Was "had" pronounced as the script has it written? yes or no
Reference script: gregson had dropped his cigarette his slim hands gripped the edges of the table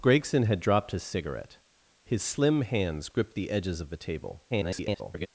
yes